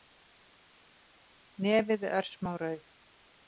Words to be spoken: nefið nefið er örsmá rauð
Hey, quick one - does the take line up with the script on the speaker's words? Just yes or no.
no